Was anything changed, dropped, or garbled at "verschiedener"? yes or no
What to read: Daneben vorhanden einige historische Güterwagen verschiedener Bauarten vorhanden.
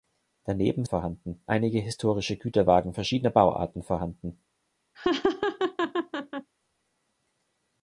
no